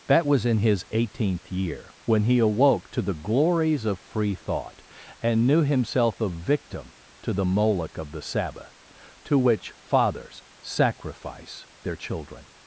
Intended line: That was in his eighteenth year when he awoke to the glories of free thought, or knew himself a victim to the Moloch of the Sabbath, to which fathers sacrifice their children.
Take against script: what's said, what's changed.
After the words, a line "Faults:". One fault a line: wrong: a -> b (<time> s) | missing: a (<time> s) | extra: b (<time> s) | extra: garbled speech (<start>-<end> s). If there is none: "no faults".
That was in his eighteenth year when he awoke to the glories of free thought, and knew himself a victim to the Moloch of the Sabbath, to which fathers sacrifice their children.
Faults:
wrong: or -> and (5.2 s)